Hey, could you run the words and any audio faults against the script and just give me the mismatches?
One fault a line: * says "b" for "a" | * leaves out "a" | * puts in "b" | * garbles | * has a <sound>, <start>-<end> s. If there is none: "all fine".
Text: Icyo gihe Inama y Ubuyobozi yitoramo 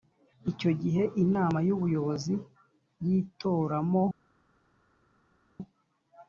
all fine